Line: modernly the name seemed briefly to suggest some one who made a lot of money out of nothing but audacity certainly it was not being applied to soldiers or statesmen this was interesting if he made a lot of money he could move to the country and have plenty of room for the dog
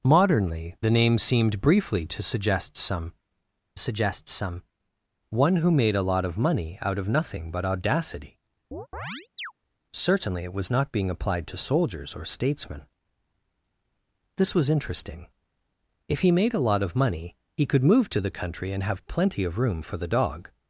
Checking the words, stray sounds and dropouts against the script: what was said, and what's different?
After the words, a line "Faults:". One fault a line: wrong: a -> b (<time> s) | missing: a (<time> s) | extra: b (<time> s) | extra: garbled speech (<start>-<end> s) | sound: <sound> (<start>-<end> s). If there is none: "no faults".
modernly the name seemed briefly to suggest some suggest some one who made a lot of money out of nothing but audacity certainly it was not being applied to soldiers or statesmen this was interesting if he made a lot of money he could move to the country and have plenty of room for the dog
Faults:
extra: suggest some (3.8 s)
sound: chirp (8.7-9.5 s)